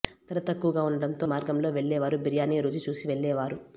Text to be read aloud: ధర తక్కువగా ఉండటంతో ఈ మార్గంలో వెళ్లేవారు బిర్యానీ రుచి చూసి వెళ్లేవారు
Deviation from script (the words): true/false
true